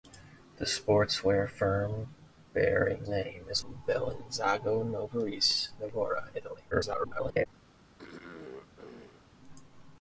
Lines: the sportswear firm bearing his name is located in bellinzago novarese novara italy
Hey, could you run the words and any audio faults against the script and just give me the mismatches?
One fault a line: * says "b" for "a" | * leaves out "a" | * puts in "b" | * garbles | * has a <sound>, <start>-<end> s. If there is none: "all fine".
* leaves out "his"
* leaves out "located"
* garbles
* has a throat clearing, 8.0-9.3 s